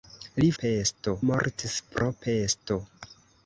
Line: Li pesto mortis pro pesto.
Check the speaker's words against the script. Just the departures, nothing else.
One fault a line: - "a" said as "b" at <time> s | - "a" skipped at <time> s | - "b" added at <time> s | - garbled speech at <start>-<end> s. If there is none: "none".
none